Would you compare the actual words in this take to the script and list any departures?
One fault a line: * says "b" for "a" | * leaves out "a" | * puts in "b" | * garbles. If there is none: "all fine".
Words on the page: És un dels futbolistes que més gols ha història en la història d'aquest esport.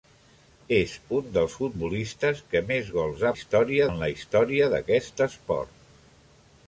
all fine